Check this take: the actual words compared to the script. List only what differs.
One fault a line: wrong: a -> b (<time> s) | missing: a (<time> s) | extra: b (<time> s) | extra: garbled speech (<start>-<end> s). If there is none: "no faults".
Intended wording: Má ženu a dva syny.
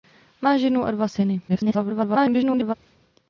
extra: garbled speech (1.5-2.7 s)